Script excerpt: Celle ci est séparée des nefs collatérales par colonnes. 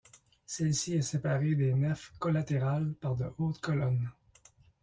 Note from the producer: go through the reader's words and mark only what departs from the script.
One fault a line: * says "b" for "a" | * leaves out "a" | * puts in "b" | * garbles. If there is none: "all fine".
* puts in "de hautes"